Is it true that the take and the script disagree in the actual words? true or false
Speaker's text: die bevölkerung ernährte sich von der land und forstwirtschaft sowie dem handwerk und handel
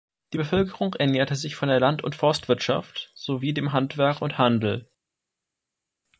false